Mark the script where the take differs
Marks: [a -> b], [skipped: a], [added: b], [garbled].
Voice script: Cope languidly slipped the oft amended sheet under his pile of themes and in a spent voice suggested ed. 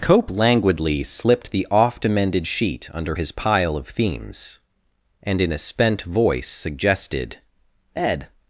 Cope languidly slipped the oft amended sheet under his pile of themes and in a spent voice suggested ed.